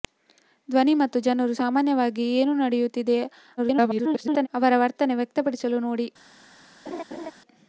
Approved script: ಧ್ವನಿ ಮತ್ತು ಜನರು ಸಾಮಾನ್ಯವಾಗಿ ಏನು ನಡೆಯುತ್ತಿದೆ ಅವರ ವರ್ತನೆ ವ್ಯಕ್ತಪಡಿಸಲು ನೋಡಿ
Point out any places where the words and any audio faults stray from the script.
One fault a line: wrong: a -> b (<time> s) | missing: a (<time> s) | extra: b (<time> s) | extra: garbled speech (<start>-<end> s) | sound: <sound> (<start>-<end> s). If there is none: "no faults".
extra: garbled speech (3.6-4.5 s)
sound: laugh (6.9-7.3 s)